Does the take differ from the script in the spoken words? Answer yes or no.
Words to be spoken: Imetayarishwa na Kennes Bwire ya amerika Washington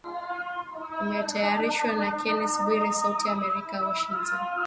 yes